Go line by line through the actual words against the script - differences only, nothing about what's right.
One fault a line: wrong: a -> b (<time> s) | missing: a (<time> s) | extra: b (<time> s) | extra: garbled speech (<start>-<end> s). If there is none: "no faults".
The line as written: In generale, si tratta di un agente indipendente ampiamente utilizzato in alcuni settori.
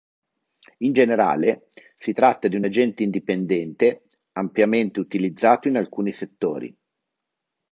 no faults